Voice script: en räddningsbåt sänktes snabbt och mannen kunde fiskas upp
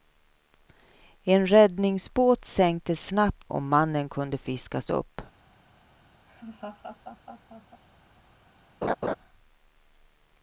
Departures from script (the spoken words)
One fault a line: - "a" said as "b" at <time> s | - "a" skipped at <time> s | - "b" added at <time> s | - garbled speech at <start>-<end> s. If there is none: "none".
none